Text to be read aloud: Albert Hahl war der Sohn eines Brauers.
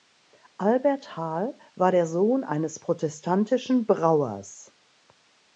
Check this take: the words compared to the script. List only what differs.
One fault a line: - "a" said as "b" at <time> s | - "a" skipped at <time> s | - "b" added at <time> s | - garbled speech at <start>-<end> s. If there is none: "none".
- "protestantischen" added at 2.8 s